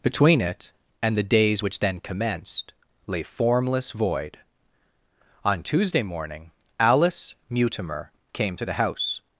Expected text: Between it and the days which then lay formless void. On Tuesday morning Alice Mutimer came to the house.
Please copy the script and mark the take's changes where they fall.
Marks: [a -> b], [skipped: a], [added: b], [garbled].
Between it and the days which then [added: commenced] lay formless void. On Tuesday morning Alice Mutimer came to the house.